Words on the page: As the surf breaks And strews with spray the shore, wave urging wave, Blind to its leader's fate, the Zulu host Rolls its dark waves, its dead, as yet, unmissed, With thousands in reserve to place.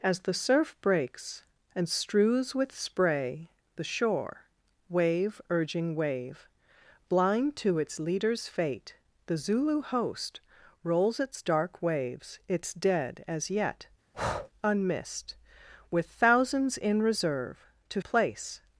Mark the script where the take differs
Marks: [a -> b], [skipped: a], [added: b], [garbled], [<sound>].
As the surf breaks And strews with spray the shore, wave urging wave, Blind to its leader's fate, the Zulu host Rolls its dark waves, its dead, as yet, [breath] unmissed, With thousands in reserve to place.